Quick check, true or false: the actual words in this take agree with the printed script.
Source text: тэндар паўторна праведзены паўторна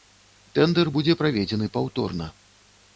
false